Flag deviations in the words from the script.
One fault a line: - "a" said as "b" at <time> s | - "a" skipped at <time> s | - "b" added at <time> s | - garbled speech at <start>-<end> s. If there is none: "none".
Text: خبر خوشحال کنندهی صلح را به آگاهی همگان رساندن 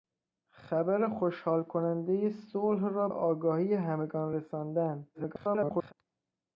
- "به" skipped at 3.1 s
- garbled speech at 5.1-5.9 s